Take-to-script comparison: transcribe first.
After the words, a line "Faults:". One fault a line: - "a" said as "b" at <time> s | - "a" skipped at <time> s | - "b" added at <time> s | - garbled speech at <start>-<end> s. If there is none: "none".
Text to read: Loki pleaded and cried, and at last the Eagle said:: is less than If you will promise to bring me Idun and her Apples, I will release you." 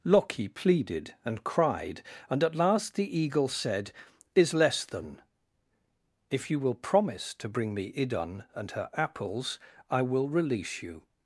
Loki pleaded and cried, and at last the Eagle said:: is less than If you will promise to bring me Idun and her Apples, I will release you."
Faults:
none